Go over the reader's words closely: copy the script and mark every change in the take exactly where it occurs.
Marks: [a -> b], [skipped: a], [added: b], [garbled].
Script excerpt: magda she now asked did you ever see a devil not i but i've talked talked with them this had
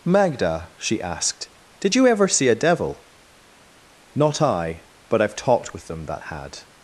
magda she [skipped: now] asked did you ever see a devil not i but i've talked [skipped: talked] with them [this -> that] had